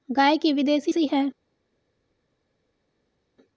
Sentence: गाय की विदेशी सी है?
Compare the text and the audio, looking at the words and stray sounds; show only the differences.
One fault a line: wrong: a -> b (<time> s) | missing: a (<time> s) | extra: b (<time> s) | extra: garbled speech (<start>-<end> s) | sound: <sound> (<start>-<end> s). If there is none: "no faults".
no faults